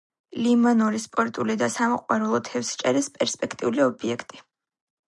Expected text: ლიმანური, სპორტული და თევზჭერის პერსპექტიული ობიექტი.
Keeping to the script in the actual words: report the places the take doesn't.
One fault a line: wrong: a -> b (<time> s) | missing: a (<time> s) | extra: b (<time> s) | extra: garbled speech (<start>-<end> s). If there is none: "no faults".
extra: სამოყვარულო (1.7 s)